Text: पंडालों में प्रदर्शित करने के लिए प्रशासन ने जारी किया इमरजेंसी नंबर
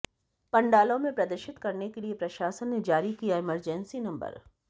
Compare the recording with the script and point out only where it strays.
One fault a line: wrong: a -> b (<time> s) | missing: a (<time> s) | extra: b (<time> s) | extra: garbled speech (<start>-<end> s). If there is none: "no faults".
no faults